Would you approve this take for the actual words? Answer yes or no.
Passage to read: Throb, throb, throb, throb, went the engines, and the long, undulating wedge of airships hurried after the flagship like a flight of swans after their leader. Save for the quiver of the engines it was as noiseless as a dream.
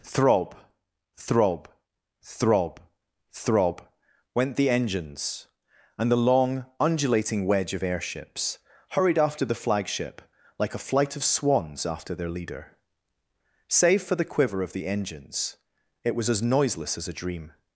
yes